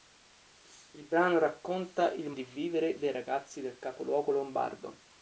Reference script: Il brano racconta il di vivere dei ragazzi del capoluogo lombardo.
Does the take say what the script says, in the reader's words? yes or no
yes